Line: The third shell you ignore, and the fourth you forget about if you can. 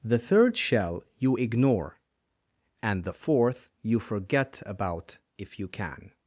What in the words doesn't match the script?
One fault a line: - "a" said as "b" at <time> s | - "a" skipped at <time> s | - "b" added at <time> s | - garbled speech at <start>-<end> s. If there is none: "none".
none